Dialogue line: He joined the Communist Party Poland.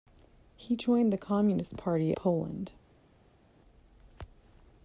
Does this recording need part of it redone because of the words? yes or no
no